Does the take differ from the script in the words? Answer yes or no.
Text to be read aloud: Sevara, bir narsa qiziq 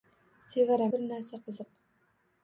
no